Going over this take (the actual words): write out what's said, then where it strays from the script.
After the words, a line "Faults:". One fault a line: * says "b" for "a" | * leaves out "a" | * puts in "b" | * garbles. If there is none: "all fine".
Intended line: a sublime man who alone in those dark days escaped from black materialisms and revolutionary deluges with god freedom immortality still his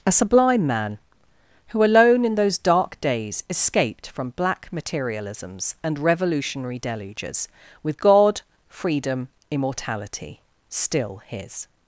a sublime man who alone in those dark days escaped from black materialisms and revolutionary deluges with god freedom immortality still his
Faults:
all fine